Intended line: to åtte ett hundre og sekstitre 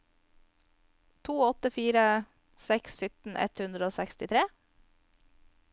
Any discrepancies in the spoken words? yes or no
yes